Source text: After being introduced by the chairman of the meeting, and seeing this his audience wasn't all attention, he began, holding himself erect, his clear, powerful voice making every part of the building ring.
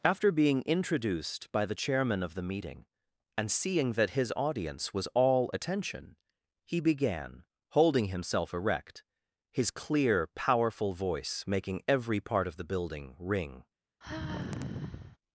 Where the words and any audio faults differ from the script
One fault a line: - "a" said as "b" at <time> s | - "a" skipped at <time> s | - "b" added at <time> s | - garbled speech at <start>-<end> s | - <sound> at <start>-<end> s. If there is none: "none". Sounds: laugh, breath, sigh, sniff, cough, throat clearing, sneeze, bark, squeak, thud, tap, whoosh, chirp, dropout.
- "this" said as "that" at 3.9 s
- "wasn't" said as "was" at 4.9 s
- sigh at 14.0-15.2 s